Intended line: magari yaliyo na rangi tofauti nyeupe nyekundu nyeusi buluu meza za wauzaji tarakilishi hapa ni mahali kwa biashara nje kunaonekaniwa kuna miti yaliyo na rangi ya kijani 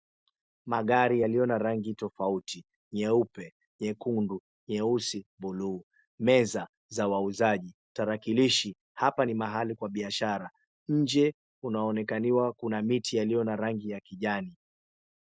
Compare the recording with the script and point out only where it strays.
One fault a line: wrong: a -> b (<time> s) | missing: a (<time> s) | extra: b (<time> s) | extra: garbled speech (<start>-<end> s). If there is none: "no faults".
no faults